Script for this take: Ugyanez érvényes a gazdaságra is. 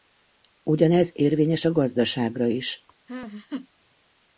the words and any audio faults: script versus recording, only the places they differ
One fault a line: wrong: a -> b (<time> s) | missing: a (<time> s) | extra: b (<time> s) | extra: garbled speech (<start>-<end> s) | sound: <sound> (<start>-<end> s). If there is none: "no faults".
sound: laugh (3.1-3.7 s)